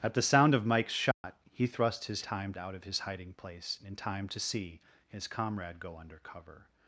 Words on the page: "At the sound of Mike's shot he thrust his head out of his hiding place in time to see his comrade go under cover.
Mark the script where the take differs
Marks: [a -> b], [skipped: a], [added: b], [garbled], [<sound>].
"At the sound of Mike's shot [dropout] he thrust his [head -> time] out of his hiding place in time to see his comrade go under cover.